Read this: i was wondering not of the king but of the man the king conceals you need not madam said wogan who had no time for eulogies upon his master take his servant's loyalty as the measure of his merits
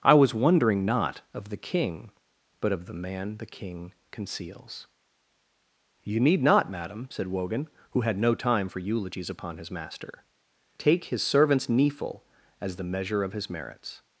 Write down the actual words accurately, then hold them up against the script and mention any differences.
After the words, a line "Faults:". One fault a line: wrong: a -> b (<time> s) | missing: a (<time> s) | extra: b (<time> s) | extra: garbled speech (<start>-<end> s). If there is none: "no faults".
i was wondering not of the king but of the man the king conceals you need not madam said wogan who had no time for eulogies upon his master take his servant's kneeful as the measure of his merits
Faults:
wrong: loyalty -> kneeful (11.7 s)